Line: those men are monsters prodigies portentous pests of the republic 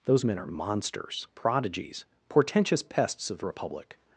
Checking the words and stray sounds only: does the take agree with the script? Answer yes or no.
yes